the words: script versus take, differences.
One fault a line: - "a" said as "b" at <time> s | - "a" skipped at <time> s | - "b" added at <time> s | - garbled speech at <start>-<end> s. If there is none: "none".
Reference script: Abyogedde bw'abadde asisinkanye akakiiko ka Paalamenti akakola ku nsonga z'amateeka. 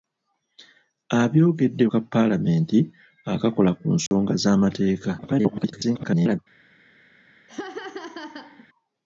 - "bw'abadde asisinkanye akakiiko" skipped at 1.8 s
- garbled speech at 5.2-6.4 s